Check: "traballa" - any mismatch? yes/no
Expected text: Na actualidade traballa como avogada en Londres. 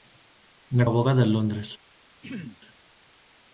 yes